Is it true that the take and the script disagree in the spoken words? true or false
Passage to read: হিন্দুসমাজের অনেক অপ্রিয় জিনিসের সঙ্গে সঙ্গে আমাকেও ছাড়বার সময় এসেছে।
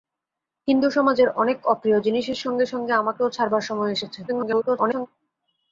true